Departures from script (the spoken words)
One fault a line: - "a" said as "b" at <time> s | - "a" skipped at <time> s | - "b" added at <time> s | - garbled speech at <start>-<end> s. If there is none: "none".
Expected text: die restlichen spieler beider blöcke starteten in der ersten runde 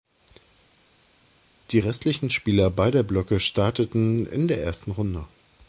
none